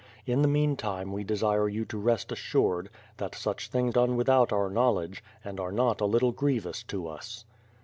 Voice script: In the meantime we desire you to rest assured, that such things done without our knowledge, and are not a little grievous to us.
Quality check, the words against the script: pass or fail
pass